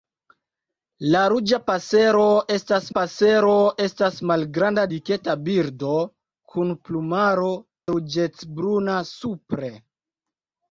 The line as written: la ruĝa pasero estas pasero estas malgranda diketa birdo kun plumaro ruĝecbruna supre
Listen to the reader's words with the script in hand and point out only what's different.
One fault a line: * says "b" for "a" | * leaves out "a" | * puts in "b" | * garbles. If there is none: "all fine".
all fine